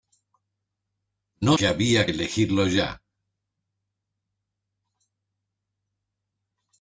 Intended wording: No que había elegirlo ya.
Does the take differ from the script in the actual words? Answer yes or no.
no